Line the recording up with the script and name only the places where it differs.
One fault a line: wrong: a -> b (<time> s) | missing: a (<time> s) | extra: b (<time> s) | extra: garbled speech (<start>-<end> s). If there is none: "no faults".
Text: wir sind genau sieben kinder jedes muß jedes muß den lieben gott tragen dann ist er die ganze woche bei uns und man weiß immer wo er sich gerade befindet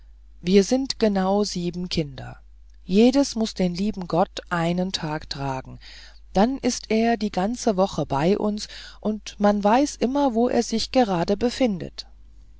missing: jedes muß (3.5 s)
extra: einen tag (4.5 s)